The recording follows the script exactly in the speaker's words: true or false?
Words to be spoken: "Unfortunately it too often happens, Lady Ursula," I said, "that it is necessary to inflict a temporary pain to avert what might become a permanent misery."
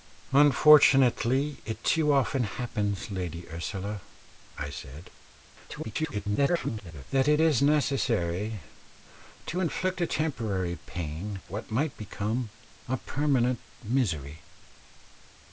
false